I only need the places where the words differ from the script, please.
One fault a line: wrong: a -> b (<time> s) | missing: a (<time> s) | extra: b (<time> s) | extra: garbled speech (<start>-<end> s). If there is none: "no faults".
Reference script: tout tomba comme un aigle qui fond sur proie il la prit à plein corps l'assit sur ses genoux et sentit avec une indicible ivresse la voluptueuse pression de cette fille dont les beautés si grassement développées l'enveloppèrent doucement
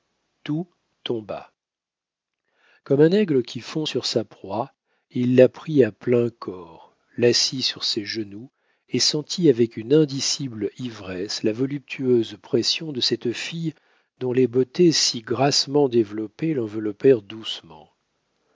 extra: sa (4.1 s)